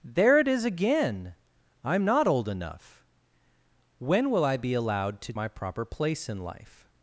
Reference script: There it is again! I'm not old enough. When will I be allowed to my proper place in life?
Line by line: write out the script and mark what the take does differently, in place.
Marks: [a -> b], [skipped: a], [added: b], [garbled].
There it is again! I'm not old enough. When will I be allowed to my proper place in life?